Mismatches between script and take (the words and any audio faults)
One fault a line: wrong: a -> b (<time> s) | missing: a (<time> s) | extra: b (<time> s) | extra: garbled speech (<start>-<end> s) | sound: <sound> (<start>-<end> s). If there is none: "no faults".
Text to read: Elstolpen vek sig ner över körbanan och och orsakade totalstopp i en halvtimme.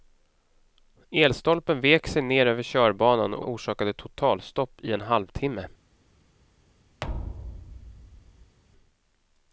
sound: thud (7.0-8.6 s)